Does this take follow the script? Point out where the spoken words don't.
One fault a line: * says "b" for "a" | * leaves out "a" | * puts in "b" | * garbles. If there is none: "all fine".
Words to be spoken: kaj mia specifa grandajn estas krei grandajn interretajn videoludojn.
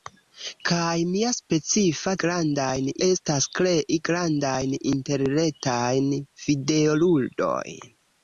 all fine